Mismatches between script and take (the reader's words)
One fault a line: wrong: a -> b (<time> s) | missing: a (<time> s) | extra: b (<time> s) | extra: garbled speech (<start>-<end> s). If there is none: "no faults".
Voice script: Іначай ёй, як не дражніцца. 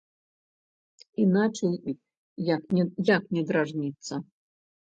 no faults